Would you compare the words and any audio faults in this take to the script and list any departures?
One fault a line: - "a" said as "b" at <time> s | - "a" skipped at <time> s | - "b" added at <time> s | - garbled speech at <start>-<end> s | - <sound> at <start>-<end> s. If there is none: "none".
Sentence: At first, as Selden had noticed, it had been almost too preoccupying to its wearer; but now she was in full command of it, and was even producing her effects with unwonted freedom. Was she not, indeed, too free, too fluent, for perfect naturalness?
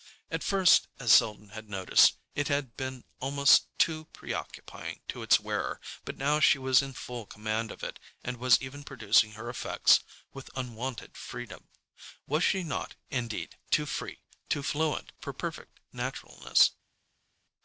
none